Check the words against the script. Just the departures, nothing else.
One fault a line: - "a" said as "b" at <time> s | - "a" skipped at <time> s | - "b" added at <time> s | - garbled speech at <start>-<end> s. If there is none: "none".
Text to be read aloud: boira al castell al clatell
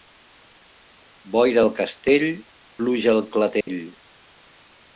- "pluja" added at 2.8 s